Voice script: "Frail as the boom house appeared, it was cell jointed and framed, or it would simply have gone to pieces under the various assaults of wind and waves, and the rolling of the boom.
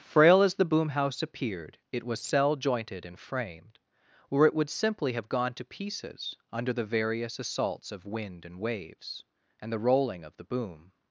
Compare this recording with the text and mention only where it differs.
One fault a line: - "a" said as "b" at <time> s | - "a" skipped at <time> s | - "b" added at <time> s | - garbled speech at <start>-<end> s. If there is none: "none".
none